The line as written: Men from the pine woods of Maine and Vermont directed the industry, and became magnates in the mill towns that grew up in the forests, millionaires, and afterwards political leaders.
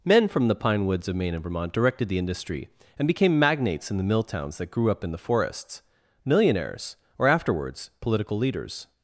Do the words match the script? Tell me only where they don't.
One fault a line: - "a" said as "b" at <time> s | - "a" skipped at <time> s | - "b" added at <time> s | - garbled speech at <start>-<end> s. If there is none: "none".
- "and" said as "or" at 7.2 s